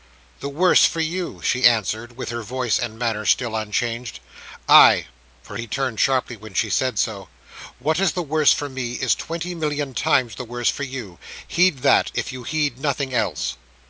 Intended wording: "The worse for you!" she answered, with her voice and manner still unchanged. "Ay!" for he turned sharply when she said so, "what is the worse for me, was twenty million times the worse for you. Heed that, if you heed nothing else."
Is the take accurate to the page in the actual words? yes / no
no